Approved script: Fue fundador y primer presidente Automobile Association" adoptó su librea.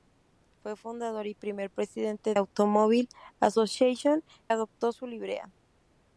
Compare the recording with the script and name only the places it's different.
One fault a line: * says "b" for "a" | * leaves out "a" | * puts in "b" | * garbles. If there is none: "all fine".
all fine